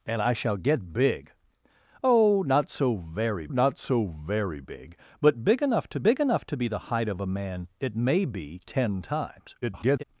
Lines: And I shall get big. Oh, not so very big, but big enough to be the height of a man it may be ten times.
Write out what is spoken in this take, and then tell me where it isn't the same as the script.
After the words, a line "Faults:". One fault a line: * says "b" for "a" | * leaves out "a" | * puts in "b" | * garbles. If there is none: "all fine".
And I shall get big. Oh, not so very not so very big, but big enough to big enough to be the height of a man it may be ten times. [garbled]
Faults:
* puts in "not so very"
* puts in "big enough to"
* garbles